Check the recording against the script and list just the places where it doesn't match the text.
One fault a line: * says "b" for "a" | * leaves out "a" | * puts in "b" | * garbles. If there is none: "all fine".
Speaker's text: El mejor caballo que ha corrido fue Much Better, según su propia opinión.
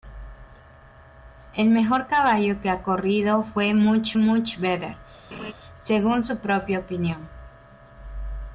* puts in "Much"